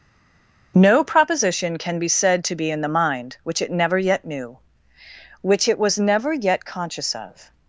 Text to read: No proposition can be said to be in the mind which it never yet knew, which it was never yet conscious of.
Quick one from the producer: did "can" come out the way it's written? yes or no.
yes